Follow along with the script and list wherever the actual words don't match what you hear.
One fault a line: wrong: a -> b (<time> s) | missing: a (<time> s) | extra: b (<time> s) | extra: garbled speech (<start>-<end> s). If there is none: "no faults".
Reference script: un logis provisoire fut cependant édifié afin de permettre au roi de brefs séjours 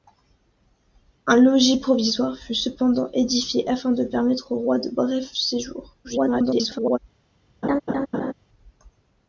extra: garbled speech (6.0-7.0 s)